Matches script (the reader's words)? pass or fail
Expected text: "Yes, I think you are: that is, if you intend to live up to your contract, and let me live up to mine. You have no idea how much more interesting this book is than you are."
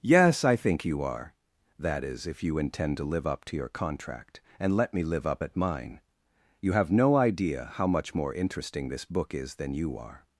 fail